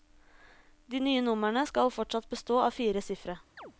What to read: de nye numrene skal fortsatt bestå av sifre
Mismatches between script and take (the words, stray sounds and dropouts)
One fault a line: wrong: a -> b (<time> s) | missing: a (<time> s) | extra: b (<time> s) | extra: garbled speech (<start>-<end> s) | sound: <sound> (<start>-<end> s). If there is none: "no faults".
extra: fire (2.7 s)
sound: chirp (3.6-3.7 s)